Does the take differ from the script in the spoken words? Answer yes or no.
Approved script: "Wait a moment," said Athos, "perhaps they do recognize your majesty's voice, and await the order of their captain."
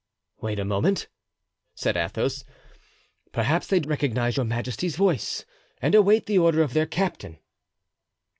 no